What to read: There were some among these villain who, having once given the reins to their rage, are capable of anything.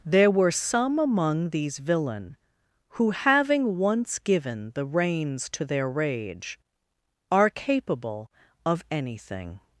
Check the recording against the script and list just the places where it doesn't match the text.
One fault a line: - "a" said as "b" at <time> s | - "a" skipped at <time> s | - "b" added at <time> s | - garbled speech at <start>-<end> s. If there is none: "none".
none